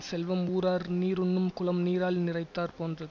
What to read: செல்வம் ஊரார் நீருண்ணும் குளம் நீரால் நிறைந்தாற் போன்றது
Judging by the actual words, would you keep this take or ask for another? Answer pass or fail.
pass